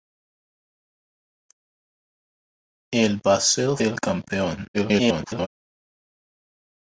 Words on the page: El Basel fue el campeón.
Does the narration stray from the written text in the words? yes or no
yes